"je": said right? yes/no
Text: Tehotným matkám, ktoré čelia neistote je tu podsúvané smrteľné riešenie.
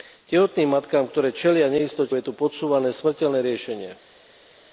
yes